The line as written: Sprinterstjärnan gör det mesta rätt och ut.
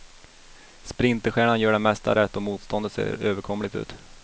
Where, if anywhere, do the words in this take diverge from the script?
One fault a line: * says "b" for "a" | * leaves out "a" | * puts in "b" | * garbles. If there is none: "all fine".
* puts in "motståndet ser överkomligt"